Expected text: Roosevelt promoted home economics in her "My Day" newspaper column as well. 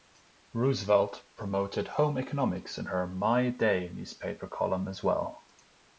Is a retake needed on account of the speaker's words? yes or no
no